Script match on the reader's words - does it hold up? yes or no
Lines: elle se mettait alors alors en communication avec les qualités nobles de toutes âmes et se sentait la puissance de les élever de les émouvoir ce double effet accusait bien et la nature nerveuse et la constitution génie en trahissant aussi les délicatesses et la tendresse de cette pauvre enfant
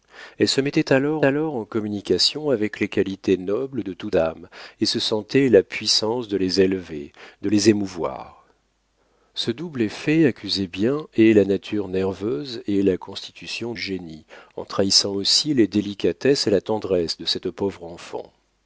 yes